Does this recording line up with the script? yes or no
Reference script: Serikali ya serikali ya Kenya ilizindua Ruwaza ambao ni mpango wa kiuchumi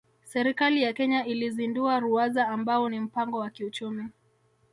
no